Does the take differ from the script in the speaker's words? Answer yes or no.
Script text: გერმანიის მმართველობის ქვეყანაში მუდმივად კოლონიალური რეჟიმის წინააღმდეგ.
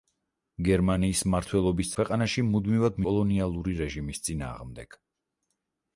no